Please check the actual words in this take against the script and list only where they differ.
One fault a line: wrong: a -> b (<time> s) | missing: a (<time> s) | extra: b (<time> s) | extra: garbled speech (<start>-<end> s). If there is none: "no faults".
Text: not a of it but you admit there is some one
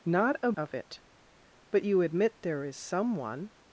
no faults